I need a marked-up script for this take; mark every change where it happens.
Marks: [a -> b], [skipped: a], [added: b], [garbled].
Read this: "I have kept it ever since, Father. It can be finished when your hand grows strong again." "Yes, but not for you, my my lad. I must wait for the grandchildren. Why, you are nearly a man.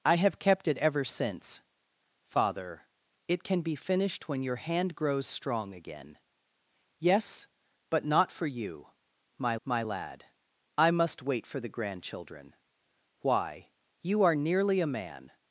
"I have kept it ever since, Father. It can be finished when your hand grows strong again." "Yes, but not for you, my my lad. I must wait for the grandchildren. Why, you are nearly a man.